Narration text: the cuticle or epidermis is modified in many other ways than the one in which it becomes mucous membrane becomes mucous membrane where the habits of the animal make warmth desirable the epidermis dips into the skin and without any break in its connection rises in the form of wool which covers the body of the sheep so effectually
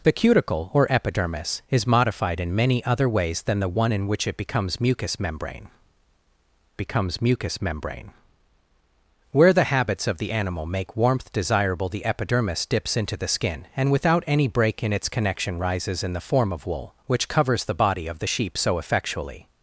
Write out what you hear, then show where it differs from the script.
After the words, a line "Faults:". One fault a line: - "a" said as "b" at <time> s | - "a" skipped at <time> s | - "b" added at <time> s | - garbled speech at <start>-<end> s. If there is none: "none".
the cuticle or epidermis is modified in many other ways than the one in which it becomes mucous membrane becomes mucous membrane where the habits of the animal make warmth desirable the epidermis dips into the skin and without any break in its connection rises in the form of wool which covers the body of the sheep so effectually
Faults:
none